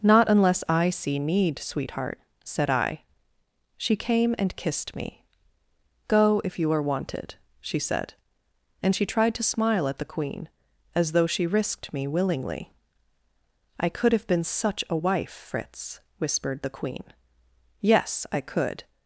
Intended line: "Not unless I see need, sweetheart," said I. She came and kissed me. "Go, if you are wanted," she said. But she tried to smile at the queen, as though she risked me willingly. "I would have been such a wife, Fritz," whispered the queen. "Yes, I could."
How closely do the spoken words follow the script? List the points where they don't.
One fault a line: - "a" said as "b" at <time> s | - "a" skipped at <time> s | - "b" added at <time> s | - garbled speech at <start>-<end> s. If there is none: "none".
- "But" said as "And" at 8.8 s
- "would" said as "could" at 13.9 s